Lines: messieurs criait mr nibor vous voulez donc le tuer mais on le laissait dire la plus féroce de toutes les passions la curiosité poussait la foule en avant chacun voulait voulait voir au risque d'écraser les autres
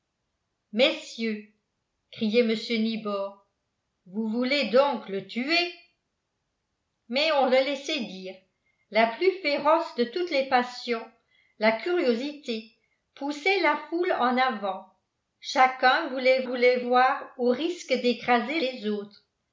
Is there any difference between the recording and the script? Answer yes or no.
no